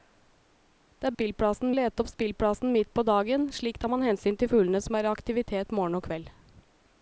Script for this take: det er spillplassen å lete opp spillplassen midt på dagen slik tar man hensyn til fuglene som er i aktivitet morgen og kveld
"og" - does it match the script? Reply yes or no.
yes